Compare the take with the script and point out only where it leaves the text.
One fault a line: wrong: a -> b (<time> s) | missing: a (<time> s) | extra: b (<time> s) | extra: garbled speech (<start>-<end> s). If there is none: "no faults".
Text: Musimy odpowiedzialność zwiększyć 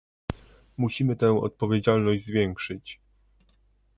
extra: tę (1.1 s)